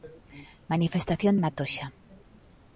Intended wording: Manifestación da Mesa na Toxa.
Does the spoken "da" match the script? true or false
false